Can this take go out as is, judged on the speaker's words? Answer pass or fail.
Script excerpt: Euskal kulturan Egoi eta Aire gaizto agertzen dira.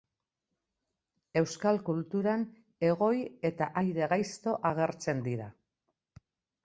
pass